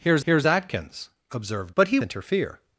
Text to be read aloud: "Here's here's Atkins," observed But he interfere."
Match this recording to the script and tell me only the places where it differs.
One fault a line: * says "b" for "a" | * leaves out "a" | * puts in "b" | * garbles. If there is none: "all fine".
all fine